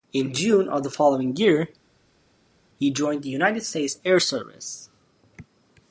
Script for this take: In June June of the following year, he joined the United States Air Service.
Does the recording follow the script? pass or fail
fail